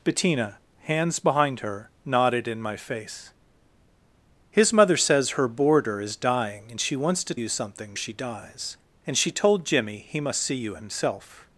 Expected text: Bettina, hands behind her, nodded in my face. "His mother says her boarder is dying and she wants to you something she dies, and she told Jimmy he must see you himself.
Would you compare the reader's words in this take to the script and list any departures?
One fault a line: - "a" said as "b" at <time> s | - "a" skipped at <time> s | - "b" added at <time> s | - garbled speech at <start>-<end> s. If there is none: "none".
none